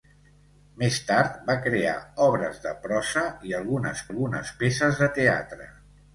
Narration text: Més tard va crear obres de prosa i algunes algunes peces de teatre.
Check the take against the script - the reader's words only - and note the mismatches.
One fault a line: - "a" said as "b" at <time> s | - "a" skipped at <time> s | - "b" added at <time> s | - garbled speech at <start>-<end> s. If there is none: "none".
none